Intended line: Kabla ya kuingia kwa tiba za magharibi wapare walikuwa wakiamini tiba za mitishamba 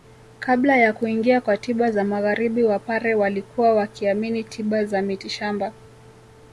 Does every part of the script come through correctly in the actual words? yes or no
yes